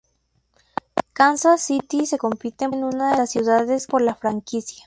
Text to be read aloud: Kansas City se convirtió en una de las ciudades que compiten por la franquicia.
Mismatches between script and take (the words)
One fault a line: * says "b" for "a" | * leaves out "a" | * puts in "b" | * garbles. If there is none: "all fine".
* says "compiten" for "convirtió"
* leaves out "de"
* leaves out "que compiten"